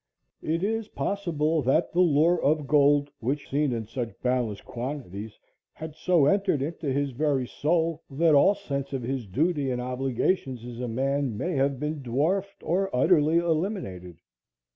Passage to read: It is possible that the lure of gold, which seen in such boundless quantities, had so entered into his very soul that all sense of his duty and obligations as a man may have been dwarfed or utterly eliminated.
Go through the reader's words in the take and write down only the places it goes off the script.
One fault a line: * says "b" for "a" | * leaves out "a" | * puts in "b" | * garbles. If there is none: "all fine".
all fine